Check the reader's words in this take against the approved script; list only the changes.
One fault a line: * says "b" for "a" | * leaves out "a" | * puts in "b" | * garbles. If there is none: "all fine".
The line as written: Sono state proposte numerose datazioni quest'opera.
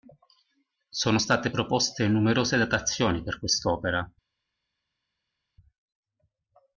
* puts in "per"